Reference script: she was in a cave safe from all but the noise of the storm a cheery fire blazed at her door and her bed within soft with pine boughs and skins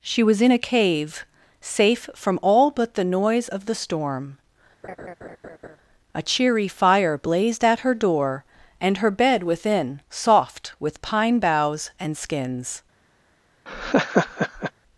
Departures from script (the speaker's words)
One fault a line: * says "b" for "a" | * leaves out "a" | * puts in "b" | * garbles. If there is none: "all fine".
all fine